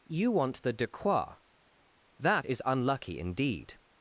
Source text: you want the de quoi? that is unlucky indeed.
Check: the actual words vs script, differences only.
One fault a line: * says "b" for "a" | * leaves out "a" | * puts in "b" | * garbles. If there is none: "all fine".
all fine